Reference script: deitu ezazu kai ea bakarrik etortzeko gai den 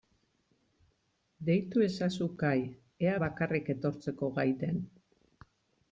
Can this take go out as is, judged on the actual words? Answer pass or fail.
pass